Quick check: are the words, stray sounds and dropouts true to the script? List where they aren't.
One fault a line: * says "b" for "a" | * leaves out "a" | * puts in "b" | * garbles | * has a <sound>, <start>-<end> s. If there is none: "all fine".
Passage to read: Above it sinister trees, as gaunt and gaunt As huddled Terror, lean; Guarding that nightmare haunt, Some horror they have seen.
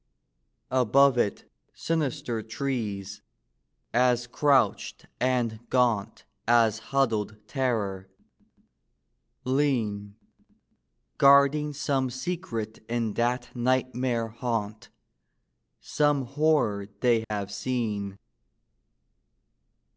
* says "crouched" for "gaunt"
* puts in "some secret in"
* has a dropout, 17.2-17.3 s